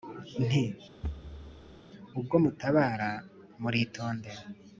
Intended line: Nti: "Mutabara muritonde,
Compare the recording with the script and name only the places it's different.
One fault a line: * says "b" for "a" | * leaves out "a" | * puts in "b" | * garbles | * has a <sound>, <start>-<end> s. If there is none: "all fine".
* has a thud, 1.0-1.8 s
* puts in "Ubwo"